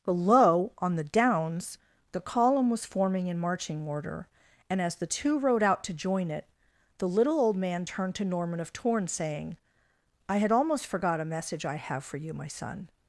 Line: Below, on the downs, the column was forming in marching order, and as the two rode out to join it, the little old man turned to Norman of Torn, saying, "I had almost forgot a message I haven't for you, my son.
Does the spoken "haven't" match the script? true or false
false